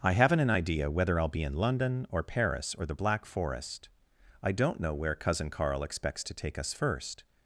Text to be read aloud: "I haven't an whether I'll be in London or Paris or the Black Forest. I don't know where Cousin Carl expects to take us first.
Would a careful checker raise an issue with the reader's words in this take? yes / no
yes